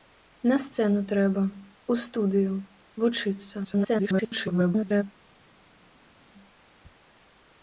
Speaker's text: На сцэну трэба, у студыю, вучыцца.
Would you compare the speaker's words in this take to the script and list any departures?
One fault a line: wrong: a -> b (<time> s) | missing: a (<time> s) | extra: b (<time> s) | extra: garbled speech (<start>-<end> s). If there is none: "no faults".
extra: garbled speech (3.6-5.0 s)